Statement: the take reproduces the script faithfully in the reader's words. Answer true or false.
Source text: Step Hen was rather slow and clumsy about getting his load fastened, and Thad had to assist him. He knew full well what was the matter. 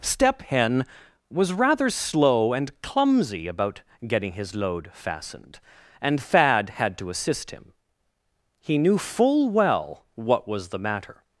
true